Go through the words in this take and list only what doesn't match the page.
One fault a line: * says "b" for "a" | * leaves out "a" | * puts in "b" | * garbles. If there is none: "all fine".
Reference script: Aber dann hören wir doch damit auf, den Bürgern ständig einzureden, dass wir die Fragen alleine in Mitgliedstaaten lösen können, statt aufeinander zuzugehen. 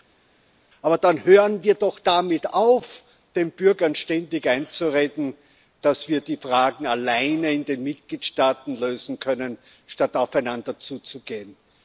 * puts in "den"